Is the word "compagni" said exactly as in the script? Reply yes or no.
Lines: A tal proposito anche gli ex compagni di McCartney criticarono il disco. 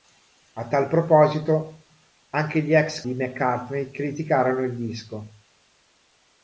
no